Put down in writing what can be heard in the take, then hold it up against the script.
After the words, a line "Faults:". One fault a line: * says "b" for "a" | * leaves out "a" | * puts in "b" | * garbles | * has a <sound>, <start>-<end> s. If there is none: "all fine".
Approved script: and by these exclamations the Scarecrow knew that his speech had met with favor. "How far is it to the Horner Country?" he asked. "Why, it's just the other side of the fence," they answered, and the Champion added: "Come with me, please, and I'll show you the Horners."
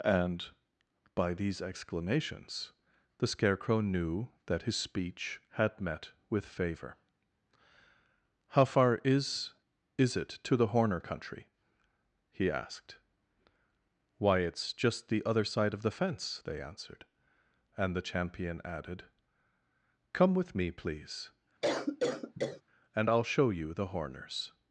and by these exclamations the Scarecrow knew that his speech had met with favor. "How far is is it to the Horner Country?" he asked. "Why, it's just the other side of the fence," they answered, and the Champion added: "Come with me, please, and I'll show you the Horners."
Faults:
* puts in "is"
* has a cough, 21.6-22.6 s